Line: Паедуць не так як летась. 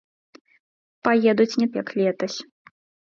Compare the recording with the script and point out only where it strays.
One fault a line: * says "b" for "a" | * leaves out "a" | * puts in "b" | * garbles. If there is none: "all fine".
* leaves out "так"